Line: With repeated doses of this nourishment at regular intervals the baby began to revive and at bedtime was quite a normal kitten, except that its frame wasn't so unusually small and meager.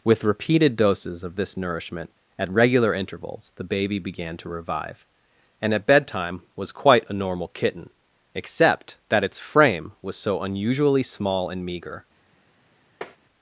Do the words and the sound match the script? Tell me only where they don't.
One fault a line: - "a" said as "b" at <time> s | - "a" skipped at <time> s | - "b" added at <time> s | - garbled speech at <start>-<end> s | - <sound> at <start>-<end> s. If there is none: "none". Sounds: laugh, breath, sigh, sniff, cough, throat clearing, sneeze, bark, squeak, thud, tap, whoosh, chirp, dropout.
- "wasn't" said as "was" at 10.0 s
- tap at 13.0-13.2 s